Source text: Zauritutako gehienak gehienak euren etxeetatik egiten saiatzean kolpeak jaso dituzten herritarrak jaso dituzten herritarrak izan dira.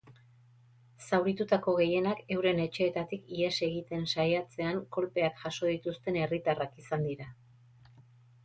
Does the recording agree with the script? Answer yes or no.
no